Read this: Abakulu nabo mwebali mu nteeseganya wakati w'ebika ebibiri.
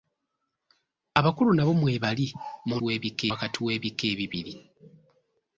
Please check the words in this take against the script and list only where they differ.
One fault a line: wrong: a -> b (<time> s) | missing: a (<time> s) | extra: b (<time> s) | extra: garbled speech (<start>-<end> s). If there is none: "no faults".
wrong: nteeseganya -> w'ebika (2.8 s)